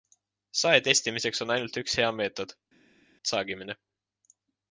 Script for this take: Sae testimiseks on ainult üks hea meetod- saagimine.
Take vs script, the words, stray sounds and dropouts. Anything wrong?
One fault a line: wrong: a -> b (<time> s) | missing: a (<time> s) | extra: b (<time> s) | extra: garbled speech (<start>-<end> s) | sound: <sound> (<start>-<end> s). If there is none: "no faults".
no faults